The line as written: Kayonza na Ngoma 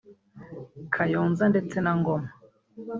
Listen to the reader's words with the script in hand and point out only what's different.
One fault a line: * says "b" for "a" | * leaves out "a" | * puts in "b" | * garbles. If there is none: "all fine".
* puts in "ndetse"